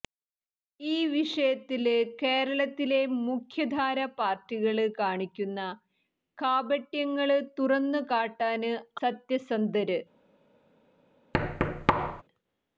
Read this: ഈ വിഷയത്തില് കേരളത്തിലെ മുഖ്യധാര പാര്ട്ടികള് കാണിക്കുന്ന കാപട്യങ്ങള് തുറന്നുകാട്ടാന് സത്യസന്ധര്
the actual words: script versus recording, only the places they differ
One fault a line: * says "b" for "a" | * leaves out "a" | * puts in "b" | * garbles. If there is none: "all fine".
all fine